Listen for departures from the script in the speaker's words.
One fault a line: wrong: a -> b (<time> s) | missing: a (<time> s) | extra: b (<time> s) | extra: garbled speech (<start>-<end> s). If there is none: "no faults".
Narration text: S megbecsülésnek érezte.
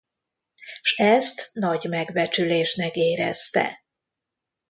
extra: ezt nagy (0.9 s)